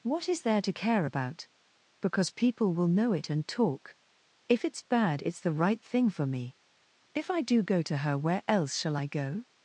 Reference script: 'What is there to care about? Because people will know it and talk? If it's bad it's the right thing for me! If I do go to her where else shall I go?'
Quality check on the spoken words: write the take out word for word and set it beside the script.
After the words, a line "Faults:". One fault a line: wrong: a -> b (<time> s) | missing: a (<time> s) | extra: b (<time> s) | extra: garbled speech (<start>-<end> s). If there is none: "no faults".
'What is there to care about? Because people will know it and talk? If it's bad it's the right thing for me! If I do go to her where else shall I go?'
Faults:
no faults